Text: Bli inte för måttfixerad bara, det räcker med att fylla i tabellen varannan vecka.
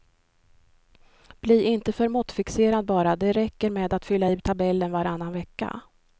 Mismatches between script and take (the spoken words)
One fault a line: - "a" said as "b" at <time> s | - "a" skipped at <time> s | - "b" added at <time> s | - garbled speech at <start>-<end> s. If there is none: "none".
none